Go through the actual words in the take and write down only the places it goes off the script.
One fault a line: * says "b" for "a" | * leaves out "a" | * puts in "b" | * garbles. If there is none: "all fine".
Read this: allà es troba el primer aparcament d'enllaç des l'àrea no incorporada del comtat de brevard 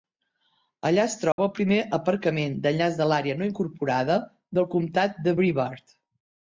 * says "de" for "des"